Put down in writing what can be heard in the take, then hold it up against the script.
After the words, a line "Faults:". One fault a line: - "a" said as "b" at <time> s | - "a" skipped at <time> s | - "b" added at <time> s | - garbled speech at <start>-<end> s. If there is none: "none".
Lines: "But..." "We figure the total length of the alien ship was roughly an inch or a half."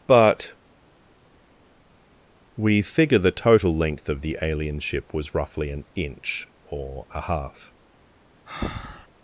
"But..." "We figure the total length of the alien ship was roughly an inch or a half."
Faults:
none